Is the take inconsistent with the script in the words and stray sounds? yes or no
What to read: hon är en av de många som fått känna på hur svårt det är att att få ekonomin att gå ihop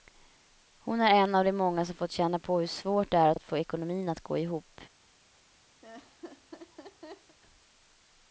yes